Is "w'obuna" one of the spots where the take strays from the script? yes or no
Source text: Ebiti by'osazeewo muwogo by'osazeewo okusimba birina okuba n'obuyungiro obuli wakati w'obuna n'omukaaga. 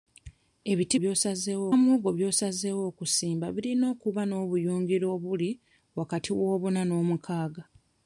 no